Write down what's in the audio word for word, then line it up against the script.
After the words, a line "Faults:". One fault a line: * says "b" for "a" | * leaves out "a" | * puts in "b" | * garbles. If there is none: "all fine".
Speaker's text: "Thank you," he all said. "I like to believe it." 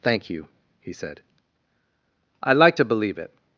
"Thank you," he said. "I like to believe it."
Faults:
* leaves out "all"